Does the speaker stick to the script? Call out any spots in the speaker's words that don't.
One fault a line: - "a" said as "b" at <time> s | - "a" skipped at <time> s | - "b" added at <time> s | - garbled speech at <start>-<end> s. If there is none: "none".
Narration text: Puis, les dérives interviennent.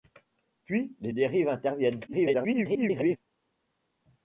- garbled speech at 2.1-3.2 s